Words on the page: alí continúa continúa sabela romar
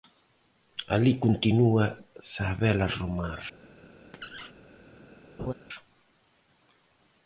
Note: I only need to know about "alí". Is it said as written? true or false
true